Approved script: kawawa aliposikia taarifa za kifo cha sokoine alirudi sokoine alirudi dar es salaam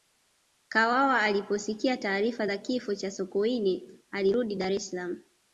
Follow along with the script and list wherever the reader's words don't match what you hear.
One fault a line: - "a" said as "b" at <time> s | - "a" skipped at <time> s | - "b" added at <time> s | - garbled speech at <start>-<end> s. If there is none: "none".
- "sokoine alirudi" skipped at 4.6 s